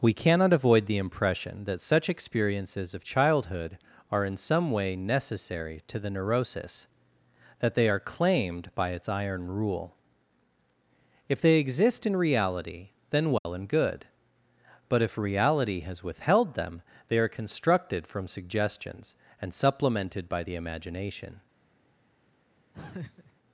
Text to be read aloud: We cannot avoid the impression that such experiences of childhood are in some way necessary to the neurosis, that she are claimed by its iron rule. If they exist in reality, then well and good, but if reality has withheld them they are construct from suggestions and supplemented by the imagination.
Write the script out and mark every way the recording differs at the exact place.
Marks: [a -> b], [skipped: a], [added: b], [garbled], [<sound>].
We cannot avoid the impression that such experiences of childhood are in some way necessary to the neurosis, that [she -> they] are claimed by its iron rule. If they exist in reality, then well [dropout] and good, but if reality has withheld them they are [construct -> constructed] from suggestions and supplemented by the imagination. [laugh]